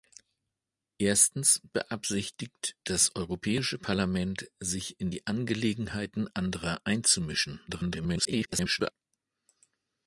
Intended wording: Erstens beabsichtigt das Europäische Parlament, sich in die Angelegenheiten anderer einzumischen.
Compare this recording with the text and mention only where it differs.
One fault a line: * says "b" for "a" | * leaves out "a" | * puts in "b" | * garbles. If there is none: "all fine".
* garbles